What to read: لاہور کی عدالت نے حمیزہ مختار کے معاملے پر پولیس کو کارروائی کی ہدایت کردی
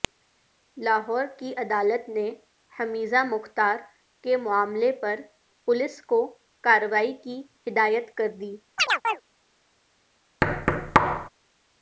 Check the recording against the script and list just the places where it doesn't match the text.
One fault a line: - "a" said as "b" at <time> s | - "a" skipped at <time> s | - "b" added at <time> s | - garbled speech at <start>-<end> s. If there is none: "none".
none